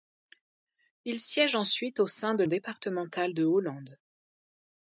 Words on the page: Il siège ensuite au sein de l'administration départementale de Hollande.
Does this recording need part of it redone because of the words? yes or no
yes